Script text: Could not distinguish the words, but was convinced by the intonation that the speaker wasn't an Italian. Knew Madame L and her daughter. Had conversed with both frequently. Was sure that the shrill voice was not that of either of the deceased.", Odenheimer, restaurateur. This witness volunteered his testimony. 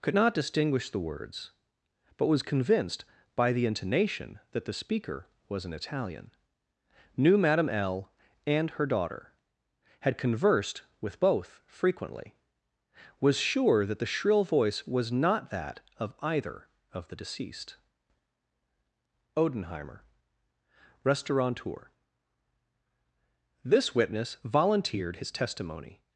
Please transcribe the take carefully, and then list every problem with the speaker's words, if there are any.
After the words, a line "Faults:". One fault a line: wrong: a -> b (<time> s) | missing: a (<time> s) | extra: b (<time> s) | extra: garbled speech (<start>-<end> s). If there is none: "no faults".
Could not distinguish the words, but was convinced by the intonation that the speaker was an Italian. Knew Madame L and her daughter. Had conversed with both frequently. Was sure that the shrill voice was not that of either of the deceased.", Odenheimer, restaurateur. This witness volunteered his testimony.
Faults:
wrong: wasn't -> was (5.5 s)